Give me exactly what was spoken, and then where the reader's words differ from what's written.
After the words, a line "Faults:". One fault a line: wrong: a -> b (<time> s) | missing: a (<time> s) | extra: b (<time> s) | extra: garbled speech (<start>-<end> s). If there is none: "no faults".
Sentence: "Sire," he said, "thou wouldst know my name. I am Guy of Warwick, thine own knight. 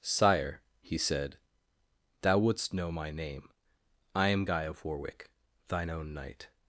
"Sire," he said, "thou wouldst know my name. I am Guy of Warwick, thine own knight.
Faults:
no faults